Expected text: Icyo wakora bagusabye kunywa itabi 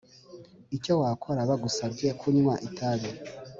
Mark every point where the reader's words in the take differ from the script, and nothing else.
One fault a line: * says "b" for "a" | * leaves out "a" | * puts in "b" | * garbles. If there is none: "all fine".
all fine